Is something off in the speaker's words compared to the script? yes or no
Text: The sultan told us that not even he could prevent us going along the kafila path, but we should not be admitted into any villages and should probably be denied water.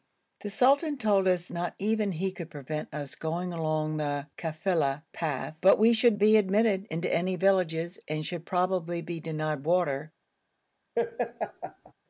yes